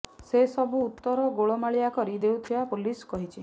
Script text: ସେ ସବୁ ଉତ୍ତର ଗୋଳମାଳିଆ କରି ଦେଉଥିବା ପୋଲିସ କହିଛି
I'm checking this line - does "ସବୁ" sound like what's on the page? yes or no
yes